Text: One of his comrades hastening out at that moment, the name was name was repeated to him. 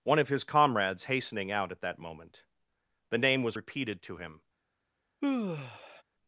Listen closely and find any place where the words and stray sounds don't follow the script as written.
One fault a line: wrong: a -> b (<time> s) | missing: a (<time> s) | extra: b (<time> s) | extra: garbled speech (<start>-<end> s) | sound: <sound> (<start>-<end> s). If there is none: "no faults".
missing: name was (3.6 s)
sound: sigh (5.2-6.0 s)